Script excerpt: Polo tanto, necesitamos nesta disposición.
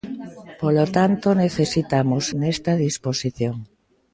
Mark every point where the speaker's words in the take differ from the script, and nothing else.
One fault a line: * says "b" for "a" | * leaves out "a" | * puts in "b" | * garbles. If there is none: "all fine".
all fine